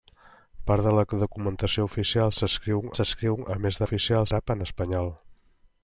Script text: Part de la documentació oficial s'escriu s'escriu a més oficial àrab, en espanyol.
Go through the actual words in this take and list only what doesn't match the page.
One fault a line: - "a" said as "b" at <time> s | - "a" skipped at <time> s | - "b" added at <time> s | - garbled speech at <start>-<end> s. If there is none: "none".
none